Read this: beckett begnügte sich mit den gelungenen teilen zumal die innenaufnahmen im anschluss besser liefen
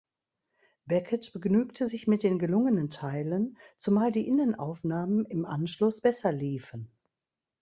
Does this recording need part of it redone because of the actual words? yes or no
no